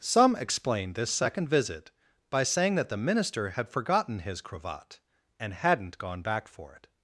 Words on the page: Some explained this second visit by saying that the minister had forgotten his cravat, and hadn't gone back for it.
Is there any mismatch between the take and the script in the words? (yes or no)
no